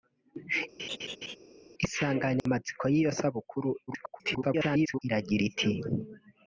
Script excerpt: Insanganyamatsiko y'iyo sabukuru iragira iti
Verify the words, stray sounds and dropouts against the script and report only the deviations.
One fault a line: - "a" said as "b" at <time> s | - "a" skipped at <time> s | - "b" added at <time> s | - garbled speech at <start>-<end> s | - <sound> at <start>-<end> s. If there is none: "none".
- laugh at 0.8-1.4 s
- dropout at 2.4-2.5 s
- garbled speech at 3.9-5.0 s